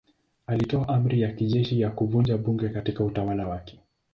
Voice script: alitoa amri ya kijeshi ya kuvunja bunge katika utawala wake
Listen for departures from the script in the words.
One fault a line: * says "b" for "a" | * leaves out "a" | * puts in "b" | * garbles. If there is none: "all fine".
all fine